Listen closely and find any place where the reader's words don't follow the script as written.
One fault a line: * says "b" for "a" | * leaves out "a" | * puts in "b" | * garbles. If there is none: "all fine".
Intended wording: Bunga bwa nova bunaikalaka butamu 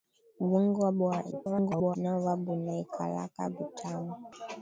* garbles